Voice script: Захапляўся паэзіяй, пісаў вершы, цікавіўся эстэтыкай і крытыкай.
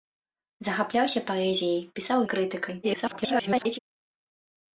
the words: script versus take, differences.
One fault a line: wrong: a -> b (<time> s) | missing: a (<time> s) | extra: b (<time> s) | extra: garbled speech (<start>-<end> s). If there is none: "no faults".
missing: вершы цікавіўся эстэтыкай (2.2 s)
extra: garbled speech (2.8-3.8 s)